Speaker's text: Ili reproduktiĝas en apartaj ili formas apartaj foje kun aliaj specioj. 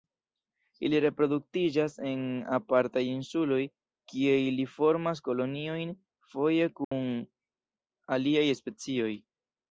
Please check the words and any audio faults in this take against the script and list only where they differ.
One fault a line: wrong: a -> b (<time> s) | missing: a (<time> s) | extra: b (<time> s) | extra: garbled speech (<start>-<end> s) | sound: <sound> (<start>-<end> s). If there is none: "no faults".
extra: insuloj kie (3.1 s)
wrong: apartaj -> koloniojn (5.3 s)
sound: dropout (6.8-6.9 s)